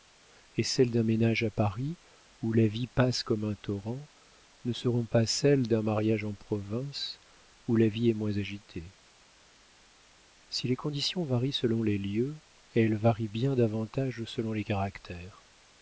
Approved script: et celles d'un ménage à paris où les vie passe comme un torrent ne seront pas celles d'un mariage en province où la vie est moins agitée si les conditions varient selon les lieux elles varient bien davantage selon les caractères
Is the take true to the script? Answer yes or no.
no